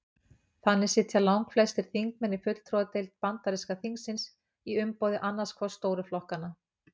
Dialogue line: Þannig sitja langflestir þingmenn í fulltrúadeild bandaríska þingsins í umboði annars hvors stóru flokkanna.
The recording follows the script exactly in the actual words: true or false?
true